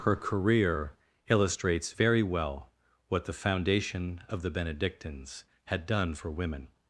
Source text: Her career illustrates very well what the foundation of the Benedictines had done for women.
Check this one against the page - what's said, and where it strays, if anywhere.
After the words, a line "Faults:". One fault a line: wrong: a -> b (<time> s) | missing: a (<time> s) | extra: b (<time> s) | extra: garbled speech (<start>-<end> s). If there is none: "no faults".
Her career illustrates very well what the foundation of the Benedictines had done for women.
Faults:
no faults